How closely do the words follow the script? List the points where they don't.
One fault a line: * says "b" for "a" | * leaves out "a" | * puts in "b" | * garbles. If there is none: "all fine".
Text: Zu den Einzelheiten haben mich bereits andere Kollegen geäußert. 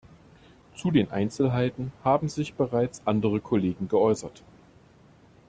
* says "sich" for "mich"